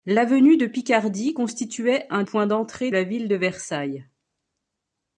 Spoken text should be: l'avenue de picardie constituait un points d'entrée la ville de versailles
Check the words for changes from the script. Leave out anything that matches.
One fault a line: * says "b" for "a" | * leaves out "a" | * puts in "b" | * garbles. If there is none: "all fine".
all fine